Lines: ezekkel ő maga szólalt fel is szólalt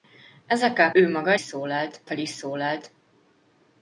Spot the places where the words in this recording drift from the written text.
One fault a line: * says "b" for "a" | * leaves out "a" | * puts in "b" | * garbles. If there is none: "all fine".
all fine